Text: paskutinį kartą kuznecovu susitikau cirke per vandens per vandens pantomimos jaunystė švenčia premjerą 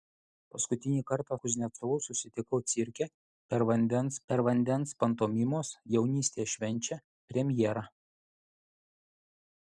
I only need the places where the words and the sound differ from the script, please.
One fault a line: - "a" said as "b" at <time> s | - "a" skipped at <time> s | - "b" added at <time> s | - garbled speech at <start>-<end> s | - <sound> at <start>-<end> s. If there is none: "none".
none